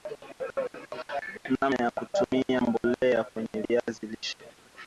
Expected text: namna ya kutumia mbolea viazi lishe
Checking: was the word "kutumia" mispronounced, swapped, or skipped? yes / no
no